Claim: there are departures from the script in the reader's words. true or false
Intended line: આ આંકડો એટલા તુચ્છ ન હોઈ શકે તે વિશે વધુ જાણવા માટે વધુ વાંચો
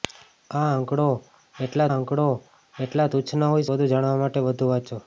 true